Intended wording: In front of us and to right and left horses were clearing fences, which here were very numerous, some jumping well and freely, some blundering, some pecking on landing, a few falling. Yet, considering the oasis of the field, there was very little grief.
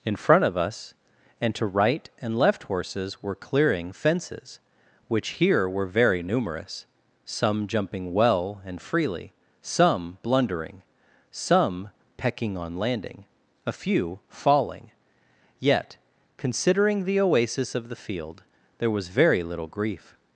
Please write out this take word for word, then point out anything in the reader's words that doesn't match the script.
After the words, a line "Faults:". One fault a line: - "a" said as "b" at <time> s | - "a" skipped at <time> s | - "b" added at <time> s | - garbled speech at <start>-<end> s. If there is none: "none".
In front of us and to right and left horses were clearing fences, which here were very numerous, some jumping well and freely, some blundering, some pecking on landing, a few falling. Yet, considering the oasis of the field, there was very little grief.
Faults:
none